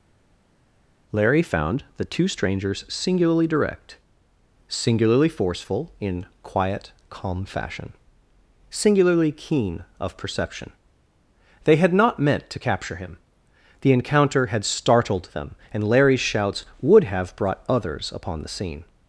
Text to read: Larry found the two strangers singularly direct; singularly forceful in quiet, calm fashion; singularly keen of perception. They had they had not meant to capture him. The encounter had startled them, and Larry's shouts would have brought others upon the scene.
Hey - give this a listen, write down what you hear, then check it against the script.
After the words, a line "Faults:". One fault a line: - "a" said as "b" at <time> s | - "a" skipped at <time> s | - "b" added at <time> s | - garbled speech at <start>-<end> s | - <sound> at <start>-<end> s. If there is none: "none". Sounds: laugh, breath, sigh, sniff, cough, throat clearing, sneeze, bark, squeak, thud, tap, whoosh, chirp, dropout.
Larry found the two strangers singularly direct; singularly forceful in quiet, calm fashion; singularly keen of perception. They had not meant to capture him. The encounter had startled them, and Larry's shouts would have brought others upon the scene.
Faults:
- "they had" skipped at 11.9 s